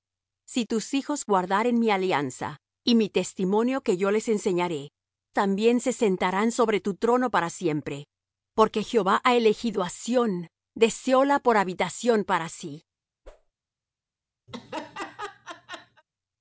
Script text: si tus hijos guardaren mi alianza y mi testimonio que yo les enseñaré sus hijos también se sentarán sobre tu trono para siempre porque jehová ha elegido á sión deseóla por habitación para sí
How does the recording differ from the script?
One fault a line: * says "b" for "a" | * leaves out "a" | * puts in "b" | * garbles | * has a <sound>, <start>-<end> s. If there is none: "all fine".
* leaves out "sus hijos"
* has a whoosh, 13.2-13.5 s
* has a laugh, 14.5-16.0 s